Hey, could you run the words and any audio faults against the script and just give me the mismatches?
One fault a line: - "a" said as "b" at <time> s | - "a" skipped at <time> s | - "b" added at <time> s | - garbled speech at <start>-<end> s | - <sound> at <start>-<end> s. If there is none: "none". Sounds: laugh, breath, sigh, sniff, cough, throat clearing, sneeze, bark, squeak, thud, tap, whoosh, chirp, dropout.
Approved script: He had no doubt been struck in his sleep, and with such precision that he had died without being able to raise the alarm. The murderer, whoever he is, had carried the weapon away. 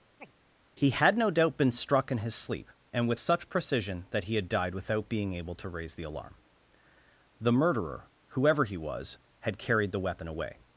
- chirp at 0.2-0.3 s
- "is" said as "was" at 8.8 s